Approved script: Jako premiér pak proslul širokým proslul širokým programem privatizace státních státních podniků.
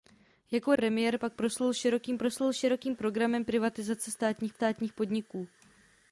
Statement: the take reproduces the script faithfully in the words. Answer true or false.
true